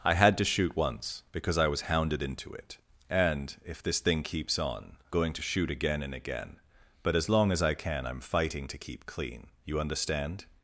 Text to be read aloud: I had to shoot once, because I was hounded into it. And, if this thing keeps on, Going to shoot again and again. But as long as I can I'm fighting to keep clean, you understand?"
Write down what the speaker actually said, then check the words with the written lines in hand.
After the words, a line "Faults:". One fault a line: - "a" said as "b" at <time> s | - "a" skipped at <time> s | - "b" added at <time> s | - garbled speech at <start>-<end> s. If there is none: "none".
I had to shoot once, because I was hounded into it. And, if this thing keeps on, Going to shoot again and again. But as long as I can I'm fighting to keep clean, you understand?"
Faults:
none